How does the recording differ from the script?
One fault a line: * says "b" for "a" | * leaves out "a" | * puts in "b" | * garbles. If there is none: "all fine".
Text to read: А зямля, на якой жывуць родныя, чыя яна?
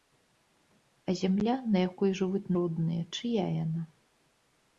all fine